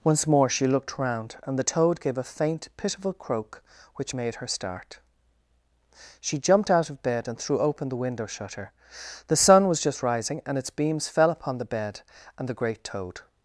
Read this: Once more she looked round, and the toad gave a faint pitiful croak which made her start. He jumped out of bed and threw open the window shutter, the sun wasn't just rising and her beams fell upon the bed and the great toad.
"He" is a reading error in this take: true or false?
true